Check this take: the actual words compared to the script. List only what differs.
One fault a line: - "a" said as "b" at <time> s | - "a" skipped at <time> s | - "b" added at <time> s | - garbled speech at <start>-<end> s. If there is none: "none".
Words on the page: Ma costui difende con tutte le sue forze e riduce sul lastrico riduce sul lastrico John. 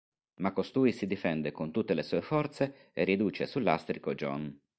- "si" added at 0.9 s
- "riduce sul lastrico" skipped at 4.2 s